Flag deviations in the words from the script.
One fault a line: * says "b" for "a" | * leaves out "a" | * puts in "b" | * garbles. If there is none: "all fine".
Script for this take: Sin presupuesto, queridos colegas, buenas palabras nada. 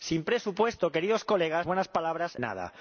all fine